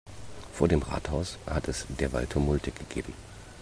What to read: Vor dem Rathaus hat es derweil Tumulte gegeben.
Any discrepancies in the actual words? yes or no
no